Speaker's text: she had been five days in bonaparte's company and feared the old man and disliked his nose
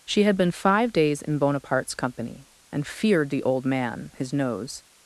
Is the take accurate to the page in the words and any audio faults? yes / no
no